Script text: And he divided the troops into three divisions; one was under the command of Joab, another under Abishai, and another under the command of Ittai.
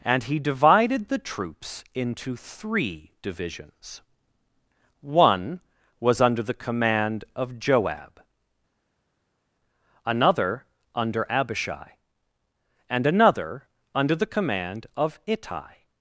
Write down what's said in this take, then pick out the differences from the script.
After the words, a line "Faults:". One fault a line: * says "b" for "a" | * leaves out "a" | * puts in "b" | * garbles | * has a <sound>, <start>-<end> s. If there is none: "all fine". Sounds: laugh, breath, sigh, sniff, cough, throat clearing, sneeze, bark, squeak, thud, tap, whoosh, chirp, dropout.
And he divided the troops into three divisions; one was under the command of Joab, another under Abishai, and another under the command of Ittai.
Faults:
all fine